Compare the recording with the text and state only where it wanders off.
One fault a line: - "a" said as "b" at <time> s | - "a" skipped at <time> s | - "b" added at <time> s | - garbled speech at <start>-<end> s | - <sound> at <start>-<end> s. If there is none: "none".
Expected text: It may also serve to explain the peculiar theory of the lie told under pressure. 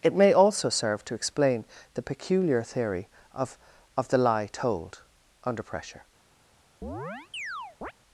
- "of" added at 4.0 s
- chirp at 6.8-7.9 s